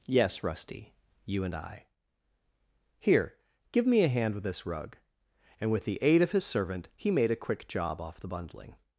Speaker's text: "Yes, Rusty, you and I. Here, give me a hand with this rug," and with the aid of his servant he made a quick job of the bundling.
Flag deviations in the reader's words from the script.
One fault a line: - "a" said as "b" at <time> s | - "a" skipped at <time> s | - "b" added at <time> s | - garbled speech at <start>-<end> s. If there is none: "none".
- "of" said as "off" at 8.0 s